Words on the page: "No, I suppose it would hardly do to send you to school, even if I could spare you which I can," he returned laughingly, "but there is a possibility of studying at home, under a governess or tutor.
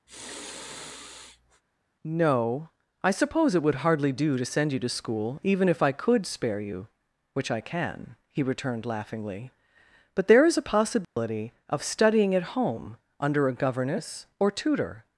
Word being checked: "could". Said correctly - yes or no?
yes